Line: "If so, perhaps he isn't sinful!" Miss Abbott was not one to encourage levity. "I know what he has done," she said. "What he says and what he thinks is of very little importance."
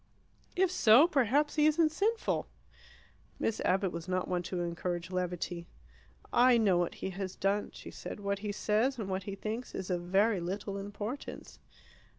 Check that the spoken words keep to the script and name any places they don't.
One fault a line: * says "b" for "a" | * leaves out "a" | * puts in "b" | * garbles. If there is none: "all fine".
all fine